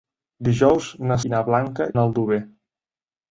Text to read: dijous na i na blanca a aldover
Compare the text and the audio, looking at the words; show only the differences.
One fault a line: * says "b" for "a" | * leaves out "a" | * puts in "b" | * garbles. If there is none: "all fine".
all fine